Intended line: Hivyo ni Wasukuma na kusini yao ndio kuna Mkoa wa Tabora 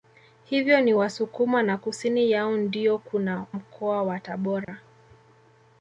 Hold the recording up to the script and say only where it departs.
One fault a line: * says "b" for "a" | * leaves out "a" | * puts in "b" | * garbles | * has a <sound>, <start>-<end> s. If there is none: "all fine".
* has a dropout, 4.6-4.7 s